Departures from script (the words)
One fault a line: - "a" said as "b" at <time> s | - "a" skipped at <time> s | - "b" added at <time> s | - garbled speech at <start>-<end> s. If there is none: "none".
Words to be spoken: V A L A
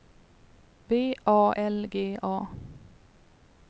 - "G" added at 1.9 s